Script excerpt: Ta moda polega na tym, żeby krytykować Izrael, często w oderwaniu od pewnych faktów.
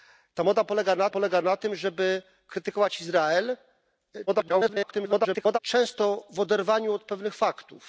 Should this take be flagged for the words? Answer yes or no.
yes